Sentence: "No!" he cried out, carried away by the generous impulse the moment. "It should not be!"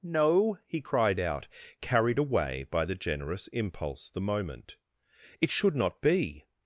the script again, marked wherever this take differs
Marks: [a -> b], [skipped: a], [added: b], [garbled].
"No!" he cried out, carried away by the generous impulse the moment. "It should not be!"